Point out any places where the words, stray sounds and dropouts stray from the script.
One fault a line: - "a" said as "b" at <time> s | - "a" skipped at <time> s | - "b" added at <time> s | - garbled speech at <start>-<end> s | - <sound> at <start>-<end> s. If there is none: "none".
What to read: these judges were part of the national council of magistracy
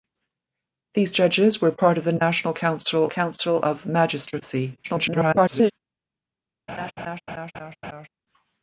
- "council" added at 3.1 s
- garbled speech at 4.8-5.7 s
- laugh at 6.7-8.1 s